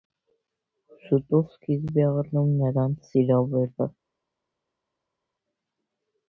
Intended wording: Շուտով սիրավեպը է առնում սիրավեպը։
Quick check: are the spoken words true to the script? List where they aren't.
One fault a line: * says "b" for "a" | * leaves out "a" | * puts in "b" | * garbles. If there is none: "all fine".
* says "սկիզբ" for "սիրավեպը"
* puts in "նրանց"